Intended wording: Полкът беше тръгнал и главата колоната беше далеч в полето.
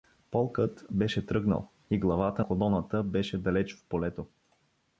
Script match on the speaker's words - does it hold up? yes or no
yes